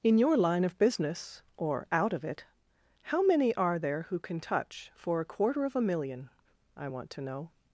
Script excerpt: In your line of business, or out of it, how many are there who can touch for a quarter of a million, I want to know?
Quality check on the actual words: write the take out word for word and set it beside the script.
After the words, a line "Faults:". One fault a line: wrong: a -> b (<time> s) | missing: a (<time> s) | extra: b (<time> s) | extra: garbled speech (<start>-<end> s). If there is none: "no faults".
In your line of business, or out of it, how many are there who can touch for a quarter of a million, I want to know?
Faults:
no faults